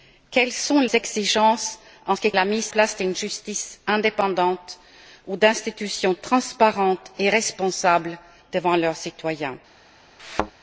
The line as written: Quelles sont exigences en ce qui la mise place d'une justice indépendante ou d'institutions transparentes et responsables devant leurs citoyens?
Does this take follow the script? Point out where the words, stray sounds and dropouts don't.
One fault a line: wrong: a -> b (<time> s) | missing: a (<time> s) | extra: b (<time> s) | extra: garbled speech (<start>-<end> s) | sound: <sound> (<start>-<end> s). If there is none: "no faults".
sound: thud (10.2-10.5 s)